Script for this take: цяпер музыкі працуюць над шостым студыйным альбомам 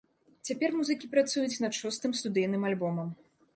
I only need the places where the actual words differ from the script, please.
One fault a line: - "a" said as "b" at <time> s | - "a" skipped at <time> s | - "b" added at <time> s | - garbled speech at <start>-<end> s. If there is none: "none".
none